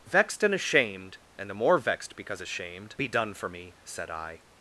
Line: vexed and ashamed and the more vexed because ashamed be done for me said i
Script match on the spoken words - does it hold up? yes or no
yes